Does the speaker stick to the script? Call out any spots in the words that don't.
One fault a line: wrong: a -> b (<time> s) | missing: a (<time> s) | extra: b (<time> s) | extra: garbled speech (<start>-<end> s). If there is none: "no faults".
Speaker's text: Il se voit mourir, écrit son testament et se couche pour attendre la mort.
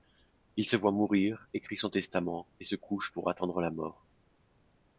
no faults